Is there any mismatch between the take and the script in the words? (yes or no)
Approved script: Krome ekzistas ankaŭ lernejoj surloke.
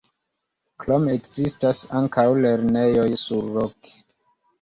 no